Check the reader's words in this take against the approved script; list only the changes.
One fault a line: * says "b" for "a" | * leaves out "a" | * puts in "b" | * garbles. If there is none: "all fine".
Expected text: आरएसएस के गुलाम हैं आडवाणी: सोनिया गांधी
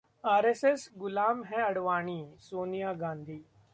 * leaves out "के"